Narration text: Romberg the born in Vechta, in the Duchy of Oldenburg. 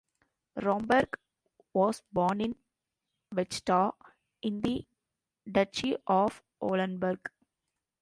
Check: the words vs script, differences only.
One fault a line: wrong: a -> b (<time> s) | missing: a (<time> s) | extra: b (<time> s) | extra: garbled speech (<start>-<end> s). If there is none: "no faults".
wrong: the -> was (1.8 s)